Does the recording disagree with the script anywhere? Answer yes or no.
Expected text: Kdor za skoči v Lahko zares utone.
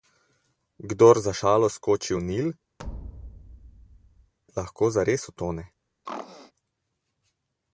yes